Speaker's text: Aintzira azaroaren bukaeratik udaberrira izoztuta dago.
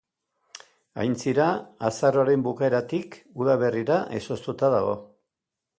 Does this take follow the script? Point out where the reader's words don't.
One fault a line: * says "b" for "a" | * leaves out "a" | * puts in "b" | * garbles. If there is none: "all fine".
all fine